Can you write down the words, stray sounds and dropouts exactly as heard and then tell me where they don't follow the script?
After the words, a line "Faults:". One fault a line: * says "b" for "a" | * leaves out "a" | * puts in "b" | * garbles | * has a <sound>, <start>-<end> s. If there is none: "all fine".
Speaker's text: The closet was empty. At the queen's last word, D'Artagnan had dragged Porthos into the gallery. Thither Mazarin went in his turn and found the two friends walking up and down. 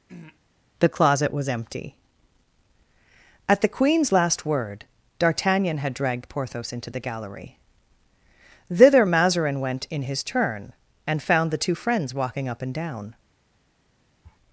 The closet was empty. At the queen's last word, D'Artagnan had dragged Porthos into the gallery. Thither Mazarin went in his turn and found the two friends walking up and down.
Faults:
* has a throat clearing, 0.1-0.4 s
* has a sniff, 14.2-14.4 s